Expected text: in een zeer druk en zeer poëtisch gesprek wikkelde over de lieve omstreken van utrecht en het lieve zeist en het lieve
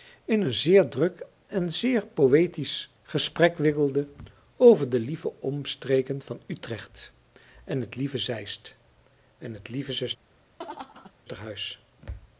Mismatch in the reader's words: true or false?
false